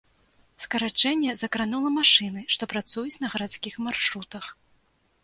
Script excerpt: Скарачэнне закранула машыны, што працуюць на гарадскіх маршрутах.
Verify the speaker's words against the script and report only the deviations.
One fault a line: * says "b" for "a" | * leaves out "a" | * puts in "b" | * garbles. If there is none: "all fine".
all fine